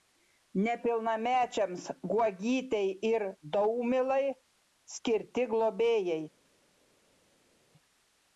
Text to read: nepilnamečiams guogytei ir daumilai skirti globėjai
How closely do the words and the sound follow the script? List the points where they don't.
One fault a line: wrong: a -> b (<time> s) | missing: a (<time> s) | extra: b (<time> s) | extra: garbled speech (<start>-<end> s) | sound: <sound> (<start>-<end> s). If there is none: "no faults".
no faults